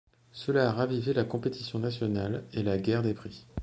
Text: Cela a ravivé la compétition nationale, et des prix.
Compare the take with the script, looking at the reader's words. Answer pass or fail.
fail